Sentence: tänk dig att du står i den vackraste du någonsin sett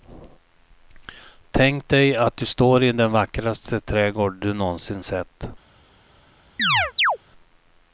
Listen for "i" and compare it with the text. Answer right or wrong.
right